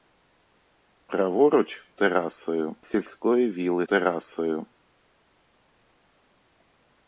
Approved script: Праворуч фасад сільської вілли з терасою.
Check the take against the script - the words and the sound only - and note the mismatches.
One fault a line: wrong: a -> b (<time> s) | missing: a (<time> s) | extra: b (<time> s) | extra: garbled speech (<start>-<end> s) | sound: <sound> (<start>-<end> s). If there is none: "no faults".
wrong: фасад -> терасою (1.9 s)
missing: з (3.9 s)